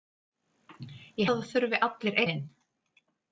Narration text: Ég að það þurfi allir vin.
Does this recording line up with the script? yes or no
yes